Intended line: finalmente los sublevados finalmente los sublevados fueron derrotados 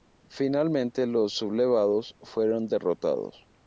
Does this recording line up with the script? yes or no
no